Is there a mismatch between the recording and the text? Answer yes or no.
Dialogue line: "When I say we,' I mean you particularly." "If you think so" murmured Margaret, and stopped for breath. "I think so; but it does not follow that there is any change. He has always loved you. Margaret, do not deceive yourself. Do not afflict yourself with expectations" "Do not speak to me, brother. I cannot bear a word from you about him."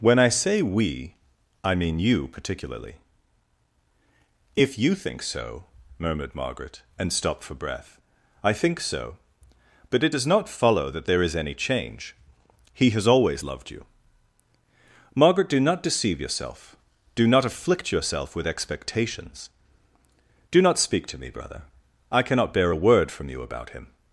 no